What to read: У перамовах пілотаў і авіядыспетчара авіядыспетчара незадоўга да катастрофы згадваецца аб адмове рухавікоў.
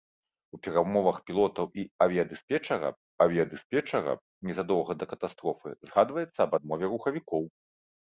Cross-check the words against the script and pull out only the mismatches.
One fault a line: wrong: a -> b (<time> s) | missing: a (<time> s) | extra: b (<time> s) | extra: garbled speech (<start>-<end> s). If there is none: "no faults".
no faults